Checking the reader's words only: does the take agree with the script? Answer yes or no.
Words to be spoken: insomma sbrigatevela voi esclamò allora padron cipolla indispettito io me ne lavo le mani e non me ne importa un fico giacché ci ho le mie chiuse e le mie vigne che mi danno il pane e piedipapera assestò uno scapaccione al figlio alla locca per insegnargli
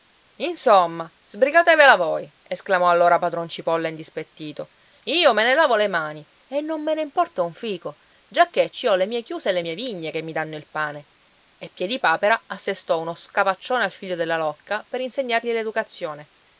no